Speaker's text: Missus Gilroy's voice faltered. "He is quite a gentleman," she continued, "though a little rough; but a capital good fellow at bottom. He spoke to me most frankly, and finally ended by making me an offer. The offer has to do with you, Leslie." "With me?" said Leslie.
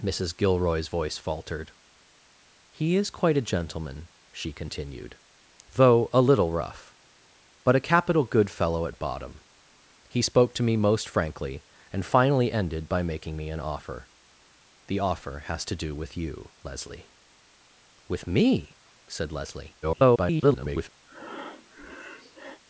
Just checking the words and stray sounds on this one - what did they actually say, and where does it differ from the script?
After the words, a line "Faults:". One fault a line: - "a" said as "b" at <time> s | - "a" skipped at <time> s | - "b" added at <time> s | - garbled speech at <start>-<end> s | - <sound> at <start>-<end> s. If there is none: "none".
Missus Gilroy's voice faltered. "He is quite a gentleman," she continued, "though a little rough; but a capital good fellow at bottom. He spoke to me most frankly, and finally ended by making me an offer. The offer has to do with you, Leslie." "With me?" said Leslie. [garbled]
Faults:
- garbled speech at 19.8-20.9 s
- breath at 21.1-22.6 s